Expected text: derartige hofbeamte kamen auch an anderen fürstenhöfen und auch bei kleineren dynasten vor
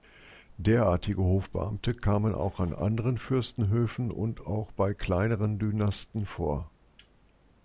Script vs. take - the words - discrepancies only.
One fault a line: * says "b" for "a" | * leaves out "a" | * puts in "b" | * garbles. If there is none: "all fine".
all fine